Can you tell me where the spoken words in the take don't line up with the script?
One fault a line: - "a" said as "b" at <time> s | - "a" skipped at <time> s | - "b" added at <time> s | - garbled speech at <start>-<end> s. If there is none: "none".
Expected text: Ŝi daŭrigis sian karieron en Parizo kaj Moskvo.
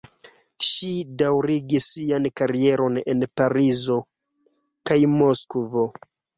none